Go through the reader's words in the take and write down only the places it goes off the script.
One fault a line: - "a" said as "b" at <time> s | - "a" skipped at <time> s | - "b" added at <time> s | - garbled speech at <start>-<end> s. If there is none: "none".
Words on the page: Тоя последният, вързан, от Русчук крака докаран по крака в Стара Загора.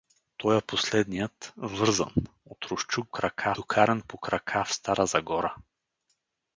none